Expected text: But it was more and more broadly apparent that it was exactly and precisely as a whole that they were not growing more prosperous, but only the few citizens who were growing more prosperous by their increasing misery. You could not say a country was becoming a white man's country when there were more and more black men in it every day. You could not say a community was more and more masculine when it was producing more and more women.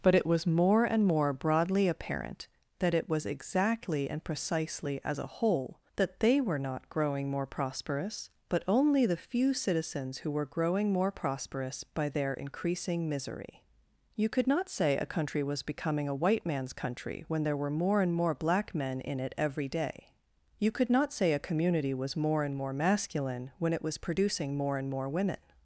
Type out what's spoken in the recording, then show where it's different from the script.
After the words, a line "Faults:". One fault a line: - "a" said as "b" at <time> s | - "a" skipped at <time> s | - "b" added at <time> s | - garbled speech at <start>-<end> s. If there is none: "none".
But it was more and more broadly apparent that it was exactly and precisely as a whole that they were not growing more prosperous, but only the few citizens who were growing more prosperous by their increasing misery. You could not say a country was becoming a white man's country when there were more and more black men in it every day. You could not say a community was more and more masculine when it was producing more and more women.
Faults:
none